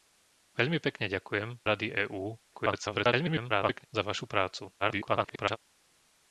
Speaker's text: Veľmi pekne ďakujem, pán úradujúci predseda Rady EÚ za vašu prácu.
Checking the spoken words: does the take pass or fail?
fail